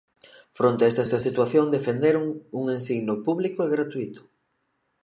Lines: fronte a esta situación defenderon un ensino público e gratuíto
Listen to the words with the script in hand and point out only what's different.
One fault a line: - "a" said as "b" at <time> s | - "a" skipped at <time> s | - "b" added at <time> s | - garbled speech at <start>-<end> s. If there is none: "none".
- "esta" added at 1.1 s